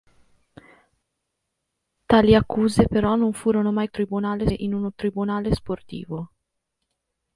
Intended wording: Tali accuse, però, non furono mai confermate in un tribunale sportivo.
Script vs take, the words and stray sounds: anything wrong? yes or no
yes